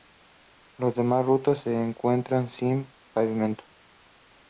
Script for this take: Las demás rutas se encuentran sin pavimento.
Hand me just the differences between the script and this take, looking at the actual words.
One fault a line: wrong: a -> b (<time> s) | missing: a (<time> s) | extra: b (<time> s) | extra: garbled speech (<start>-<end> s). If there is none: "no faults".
no faults